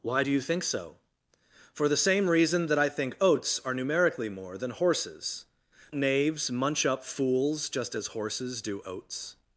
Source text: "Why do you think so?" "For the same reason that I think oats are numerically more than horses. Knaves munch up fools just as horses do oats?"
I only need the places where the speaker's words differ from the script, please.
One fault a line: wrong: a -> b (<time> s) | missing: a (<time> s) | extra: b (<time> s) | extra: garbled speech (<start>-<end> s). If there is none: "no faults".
no faults